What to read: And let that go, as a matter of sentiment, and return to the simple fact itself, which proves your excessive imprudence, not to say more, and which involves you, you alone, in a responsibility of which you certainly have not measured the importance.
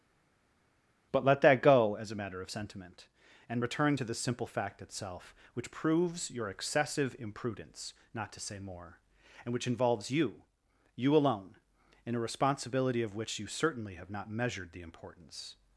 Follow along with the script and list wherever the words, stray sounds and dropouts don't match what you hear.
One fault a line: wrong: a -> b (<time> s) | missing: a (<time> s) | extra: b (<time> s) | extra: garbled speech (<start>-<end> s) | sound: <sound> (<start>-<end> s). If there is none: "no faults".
wrong: And -> But (1.1 s)